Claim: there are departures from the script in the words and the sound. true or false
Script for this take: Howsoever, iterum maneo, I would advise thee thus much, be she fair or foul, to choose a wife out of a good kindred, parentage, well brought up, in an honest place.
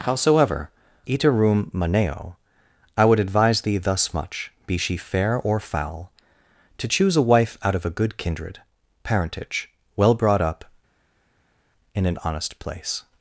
false